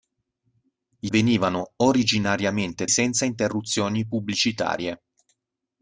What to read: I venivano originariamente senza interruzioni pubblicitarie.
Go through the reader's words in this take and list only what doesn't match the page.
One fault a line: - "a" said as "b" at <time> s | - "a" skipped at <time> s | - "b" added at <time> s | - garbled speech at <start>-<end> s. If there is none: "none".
none